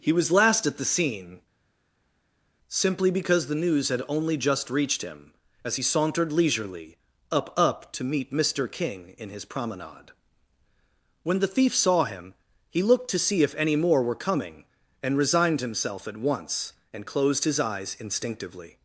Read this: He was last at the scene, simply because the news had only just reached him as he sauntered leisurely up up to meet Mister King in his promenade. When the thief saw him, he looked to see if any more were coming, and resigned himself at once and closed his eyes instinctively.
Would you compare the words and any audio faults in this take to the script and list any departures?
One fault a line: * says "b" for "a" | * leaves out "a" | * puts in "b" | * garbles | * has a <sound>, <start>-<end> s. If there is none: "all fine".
all fine